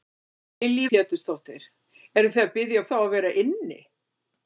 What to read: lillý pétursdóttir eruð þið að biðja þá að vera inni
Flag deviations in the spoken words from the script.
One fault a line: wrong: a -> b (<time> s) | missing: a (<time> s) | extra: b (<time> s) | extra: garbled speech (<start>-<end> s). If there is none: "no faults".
no faults